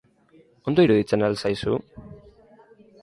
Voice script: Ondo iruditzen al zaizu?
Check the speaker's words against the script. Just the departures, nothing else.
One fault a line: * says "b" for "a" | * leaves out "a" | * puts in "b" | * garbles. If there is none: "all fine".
all fine